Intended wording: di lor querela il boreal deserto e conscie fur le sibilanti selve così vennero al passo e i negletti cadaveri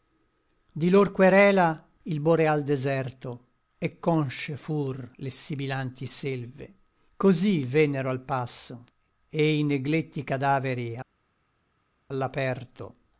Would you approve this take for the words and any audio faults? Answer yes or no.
yes